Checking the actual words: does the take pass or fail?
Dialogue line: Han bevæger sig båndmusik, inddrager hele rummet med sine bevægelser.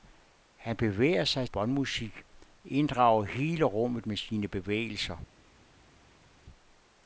pass